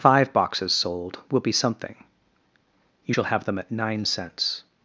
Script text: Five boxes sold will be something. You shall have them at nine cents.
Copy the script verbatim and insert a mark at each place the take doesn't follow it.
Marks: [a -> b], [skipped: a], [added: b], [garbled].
Five boxes sold will be something. You shall have them at nine cents.